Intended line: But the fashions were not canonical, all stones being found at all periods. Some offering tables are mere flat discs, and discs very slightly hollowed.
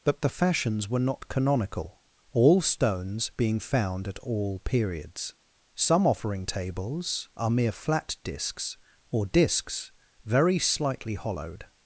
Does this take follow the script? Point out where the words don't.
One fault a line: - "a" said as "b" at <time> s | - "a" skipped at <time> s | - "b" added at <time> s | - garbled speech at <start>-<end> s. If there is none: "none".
- "and" said as "or" at 9.1 s